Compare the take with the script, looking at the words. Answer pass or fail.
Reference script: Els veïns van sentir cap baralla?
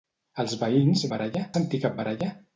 fail